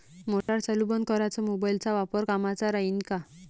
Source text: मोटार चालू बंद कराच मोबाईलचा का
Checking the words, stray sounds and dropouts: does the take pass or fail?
fail